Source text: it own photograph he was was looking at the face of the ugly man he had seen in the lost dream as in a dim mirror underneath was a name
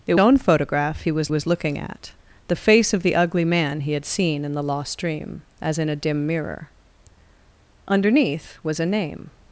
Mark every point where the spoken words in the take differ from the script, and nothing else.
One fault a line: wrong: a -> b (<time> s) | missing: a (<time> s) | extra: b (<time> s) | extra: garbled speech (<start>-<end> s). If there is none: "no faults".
no faults